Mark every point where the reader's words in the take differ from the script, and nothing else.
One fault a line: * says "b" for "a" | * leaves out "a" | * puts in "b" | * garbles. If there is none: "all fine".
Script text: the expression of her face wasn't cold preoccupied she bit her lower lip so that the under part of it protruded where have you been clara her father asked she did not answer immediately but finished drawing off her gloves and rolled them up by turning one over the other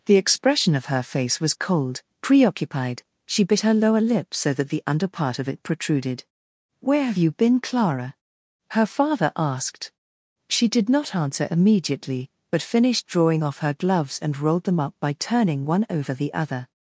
* says "was" for "wasn't"